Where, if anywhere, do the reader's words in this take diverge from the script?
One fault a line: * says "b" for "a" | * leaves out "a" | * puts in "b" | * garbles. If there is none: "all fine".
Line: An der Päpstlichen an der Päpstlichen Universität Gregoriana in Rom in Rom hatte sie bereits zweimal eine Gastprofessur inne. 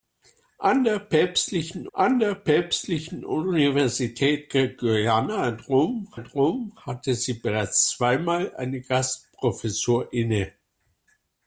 all fine